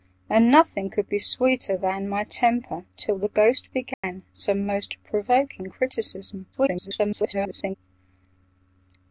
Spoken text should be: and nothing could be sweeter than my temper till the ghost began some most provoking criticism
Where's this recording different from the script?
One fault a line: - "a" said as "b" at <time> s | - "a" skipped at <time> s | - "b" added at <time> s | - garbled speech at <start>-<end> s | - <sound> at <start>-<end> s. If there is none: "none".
- dropout at 3.9-4.0 s
- garbled speech at 6.5-7.8 s